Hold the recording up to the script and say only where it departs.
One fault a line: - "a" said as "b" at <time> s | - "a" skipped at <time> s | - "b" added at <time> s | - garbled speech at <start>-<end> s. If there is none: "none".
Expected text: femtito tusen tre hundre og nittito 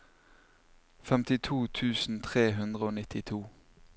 none